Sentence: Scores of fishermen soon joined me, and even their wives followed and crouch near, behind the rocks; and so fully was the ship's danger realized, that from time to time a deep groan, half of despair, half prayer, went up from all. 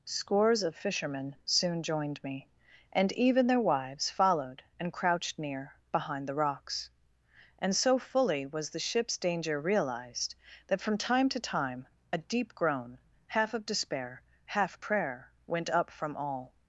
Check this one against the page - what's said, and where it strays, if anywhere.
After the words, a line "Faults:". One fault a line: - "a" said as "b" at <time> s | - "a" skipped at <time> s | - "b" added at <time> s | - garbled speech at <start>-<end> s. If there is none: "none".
Scores of fishermen soon joined me, and even their wives followed and crouched near, behind the rocks; and so fully was the ship's danger realized, that from time to time a deep groan, half of despair, half prayer, went up from all.
Faults:
- "crouch" said as "crouched" at 4.9 s